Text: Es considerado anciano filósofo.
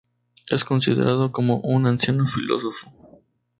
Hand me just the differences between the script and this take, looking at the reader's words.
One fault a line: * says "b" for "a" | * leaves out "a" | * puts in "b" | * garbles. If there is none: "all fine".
* puts in "como un"